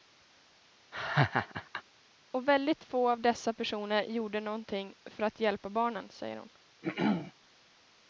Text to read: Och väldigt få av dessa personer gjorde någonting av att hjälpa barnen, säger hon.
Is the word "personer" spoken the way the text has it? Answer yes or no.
yes